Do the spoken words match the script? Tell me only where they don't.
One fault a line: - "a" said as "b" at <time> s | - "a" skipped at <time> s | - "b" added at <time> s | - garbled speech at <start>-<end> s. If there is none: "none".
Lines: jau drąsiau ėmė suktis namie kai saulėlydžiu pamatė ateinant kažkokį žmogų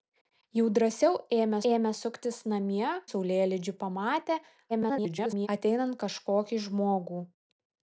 - "ėmė" added at 1.7 s
- "kai" skipped at 2.9 s
- garbled speech at 4.7-5.5 s